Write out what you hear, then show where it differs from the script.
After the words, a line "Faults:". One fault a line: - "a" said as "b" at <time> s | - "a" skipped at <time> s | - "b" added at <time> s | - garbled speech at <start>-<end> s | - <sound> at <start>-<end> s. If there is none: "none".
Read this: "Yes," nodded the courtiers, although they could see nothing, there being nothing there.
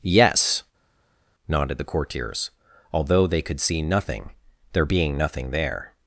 "Yes," nodded the courtiers, although they could see nothing, there being nothing there.
Faults:
none